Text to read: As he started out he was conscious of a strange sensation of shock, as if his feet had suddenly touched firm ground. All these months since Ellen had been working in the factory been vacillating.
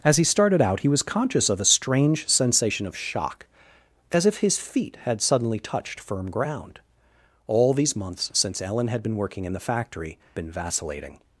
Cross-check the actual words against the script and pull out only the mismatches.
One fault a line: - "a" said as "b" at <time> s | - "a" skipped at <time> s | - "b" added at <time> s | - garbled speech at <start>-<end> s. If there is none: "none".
none